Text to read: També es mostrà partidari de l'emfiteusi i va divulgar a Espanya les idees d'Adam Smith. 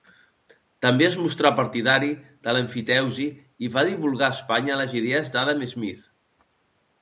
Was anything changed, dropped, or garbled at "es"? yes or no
no